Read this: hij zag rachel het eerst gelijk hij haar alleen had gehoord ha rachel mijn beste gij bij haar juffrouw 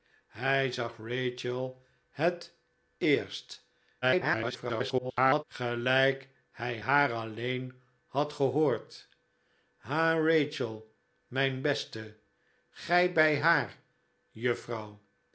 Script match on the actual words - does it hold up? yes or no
no